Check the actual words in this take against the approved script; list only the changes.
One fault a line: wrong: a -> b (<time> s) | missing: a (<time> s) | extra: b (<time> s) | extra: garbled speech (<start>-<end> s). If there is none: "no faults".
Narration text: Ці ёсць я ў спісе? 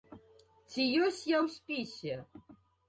no faults